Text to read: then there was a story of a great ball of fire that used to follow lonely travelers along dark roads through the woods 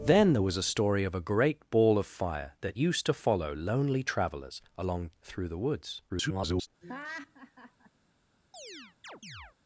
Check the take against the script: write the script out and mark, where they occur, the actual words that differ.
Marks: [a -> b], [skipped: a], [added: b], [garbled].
then there was a story of a great ball of fire that used to follow lonely travelers along [skipped: dark roads] through the woods [garbled]